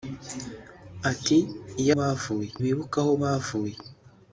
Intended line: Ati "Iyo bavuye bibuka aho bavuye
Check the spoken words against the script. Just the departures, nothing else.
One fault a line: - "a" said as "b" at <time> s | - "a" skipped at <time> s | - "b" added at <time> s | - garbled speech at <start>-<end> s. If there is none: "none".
none